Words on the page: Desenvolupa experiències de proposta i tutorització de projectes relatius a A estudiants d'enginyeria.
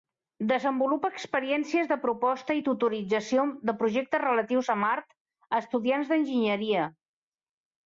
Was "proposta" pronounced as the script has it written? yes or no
yes